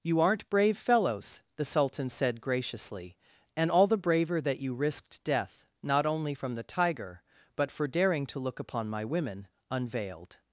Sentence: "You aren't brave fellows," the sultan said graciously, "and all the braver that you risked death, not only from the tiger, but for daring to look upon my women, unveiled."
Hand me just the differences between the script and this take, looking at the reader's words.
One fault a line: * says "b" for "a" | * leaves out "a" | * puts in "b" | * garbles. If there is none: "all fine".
all fine